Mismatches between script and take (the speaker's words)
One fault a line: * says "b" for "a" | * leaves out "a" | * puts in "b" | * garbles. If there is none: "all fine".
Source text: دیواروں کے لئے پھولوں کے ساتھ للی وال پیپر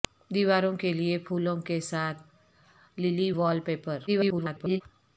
* garbles